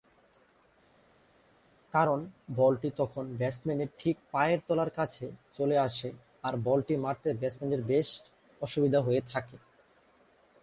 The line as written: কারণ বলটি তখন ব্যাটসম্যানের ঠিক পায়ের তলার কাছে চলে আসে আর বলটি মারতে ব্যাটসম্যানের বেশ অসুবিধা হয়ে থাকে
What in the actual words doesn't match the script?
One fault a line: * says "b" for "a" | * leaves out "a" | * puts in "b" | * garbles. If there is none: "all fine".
all fine